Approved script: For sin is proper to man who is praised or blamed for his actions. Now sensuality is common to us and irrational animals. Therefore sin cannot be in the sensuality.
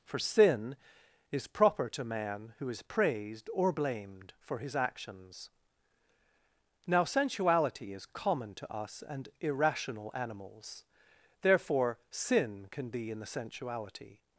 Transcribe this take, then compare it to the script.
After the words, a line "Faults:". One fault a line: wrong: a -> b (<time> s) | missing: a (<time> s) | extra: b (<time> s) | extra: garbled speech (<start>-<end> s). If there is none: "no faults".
For sin is proper to man who is praised or blamed for his actions. Now sensuality is common to us and irrational animals. Therefore sin can be in the sensuality.
Faults:
wrong: cannot -> can (12.7 s)